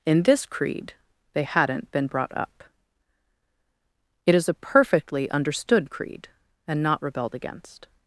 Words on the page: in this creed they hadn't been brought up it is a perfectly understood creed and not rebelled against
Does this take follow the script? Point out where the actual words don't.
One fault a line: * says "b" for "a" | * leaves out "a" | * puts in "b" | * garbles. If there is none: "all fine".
all fine